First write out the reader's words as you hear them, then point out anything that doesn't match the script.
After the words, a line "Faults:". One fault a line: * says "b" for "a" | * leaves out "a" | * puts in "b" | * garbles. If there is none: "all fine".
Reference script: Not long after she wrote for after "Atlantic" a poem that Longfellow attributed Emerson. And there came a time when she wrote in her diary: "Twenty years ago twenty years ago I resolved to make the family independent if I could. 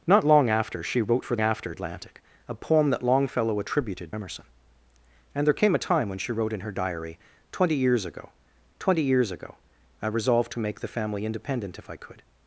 Not long after she wrote for after "Atlantic" a poem that Longfellow attributed Emerson. And there came a time when she wrote in her diary: "Twenty years ago twenty years ago I resolved to make the family independent if I could.
Faults:
all fine